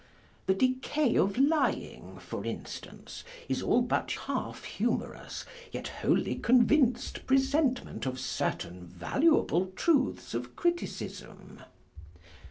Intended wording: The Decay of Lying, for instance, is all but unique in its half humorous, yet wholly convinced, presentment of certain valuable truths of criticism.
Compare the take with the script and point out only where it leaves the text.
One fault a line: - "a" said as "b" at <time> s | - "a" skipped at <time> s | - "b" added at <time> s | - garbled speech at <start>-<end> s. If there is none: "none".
- "unique in its" skipped at 4.2 s